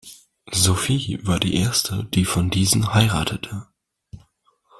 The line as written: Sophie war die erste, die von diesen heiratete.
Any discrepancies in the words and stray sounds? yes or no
no